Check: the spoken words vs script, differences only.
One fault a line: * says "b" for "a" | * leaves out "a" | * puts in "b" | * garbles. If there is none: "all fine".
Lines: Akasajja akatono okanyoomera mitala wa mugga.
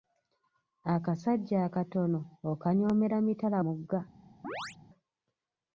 * leaves out "wa"